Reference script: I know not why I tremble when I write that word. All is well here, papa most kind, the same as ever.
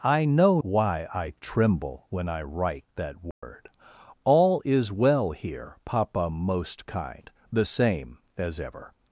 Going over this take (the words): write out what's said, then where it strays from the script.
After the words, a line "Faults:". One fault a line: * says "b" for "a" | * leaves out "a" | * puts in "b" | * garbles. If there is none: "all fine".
I know why I tremble when I write that word. All is well here, papa most kind, the same as ever.
Faults:
* leaves out "not"